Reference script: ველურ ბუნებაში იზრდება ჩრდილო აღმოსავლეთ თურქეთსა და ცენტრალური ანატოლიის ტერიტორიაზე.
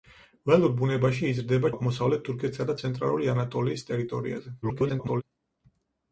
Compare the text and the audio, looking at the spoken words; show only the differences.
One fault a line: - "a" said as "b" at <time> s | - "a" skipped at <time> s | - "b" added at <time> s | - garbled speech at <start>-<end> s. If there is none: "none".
- "ჩრდილო" skipped at 1.7 s
- garbled speech at 4.6-5.2 s